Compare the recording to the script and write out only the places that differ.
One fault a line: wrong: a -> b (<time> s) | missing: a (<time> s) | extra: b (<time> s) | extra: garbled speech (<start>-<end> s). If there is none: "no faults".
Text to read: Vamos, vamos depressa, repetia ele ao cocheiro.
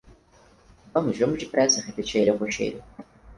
no faults